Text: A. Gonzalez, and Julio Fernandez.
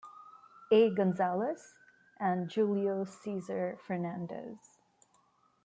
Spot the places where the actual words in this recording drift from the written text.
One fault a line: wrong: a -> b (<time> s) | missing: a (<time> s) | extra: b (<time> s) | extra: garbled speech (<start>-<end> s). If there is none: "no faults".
extra: Cesar (3.0 s)